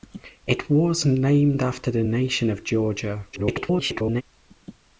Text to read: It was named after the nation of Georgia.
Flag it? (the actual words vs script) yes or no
yes